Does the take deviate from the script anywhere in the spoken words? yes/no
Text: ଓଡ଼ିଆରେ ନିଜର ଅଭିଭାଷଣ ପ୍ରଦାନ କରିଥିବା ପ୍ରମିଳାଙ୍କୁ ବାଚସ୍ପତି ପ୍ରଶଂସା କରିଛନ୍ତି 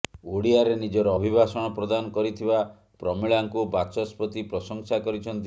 no